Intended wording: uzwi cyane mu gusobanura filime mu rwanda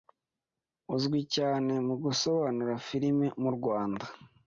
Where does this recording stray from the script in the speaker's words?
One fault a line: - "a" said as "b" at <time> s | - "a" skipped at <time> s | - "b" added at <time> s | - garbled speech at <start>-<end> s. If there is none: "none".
none